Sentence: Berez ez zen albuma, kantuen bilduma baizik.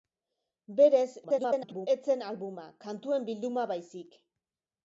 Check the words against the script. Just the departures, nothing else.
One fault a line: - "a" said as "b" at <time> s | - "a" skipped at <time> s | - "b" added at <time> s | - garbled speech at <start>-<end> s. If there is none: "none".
- garbled speech at 1.2-1.9 s